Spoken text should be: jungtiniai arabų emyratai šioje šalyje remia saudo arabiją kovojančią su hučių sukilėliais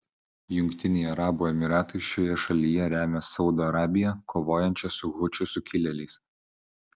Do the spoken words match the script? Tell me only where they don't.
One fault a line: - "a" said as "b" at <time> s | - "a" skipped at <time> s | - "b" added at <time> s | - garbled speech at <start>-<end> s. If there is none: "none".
none